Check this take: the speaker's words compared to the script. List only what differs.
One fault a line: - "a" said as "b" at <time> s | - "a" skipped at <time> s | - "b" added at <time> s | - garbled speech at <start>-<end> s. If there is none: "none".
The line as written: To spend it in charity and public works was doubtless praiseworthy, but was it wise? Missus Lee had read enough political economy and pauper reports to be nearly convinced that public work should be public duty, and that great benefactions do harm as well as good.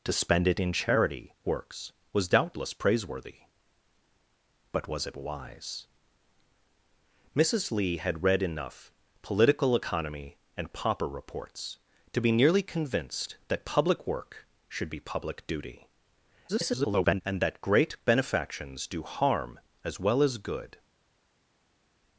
- "and public" skipped at 1.4 s
- garbled speech at 16.5-17.2 s